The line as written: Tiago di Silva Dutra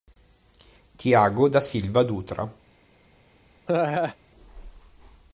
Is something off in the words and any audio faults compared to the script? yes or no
yes